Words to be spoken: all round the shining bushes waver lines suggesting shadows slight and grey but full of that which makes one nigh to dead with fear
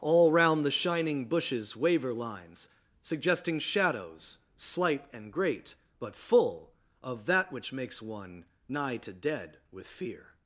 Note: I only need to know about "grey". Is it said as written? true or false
false